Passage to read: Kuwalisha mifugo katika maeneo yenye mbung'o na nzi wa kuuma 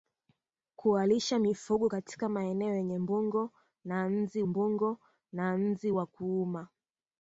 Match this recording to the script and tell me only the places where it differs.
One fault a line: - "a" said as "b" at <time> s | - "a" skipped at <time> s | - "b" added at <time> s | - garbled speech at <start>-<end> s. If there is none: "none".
- "mbung'o na nzi" added at 4.4 s